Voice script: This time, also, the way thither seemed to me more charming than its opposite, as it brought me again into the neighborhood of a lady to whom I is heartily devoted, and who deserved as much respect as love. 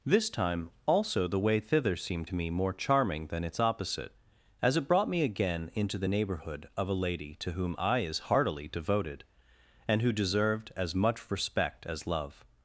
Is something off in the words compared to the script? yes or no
no